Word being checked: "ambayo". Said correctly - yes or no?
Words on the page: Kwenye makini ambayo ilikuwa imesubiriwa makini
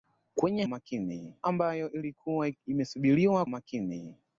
yes